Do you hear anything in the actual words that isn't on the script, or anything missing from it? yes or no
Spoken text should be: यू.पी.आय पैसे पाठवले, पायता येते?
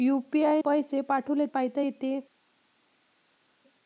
no